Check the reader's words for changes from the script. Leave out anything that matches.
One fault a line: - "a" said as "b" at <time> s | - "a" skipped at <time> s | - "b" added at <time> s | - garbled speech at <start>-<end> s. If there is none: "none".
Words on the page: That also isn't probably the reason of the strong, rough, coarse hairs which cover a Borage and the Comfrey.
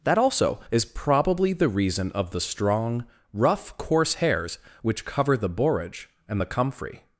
- "isn't" said as "is" at 0.7 s
- "a" said as "the" at 5.4 s